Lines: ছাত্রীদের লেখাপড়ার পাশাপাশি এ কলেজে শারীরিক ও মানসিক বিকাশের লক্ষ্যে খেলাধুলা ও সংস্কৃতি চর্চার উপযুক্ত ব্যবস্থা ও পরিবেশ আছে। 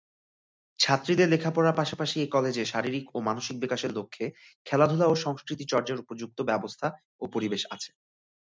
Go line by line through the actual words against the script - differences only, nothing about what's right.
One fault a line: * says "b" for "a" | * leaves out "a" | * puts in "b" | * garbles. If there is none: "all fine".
all fine